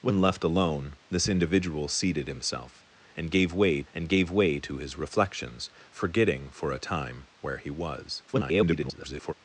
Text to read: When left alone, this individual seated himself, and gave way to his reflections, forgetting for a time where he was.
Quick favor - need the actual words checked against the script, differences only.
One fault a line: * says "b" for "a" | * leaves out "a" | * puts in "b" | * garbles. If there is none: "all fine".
* puts in "and gave way"
* garbles